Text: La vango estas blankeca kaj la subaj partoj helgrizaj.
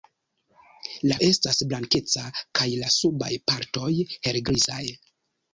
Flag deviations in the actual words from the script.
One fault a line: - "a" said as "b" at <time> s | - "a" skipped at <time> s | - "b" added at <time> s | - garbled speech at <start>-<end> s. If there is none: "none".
- "vango" skipped at 1.2 s